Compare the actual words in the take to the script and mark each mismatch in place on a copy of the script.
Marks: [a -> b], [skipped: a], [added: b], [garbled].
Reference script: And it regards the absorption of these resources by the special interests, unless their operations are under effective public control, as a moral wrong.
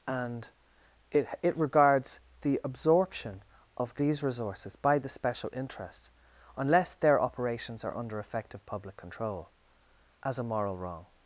And it [added: it] regards the absorption of these resources by the special interests, unless their operations are under effective public control, as a moral wrong.